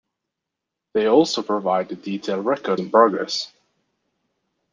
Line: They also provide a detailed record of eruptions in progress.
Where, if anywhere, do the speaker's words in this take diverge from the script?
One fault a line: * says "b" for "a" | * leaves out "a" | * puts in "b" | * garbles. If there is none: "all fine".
* leaves out "of eruptions"